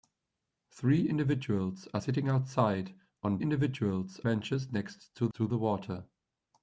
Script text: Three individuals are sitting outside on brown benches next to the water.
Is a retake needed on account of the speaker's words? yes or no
yes